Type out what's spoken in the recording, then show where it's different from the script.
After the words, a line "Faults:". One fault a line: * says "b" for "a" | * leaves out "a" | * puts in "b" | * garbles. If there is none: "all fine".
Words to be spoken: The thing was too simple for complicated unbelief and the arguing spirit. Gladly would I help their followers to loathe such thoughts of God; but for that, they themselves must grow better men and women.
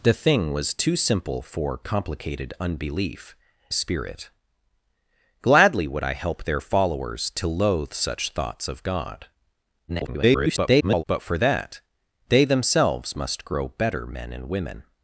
The thing was too simple for complicated unbelief spirit. Gladly would I help their followers to loathe such thoughts of God; [garbled] but for that, they themselves must grow better men and women.
Faults:
* leaves out "and the arguing"
* garbles